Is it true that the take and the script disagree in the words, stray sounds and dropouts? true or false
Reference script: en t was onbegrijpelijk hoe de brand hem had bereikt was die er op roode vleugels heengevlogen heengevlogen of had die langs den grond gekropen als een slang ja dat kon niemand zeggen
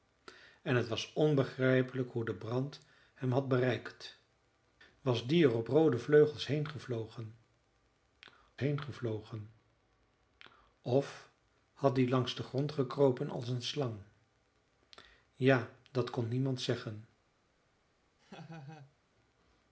true